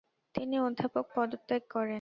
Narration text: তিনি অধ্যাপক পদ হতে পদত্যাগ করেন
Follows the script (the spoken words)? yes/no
no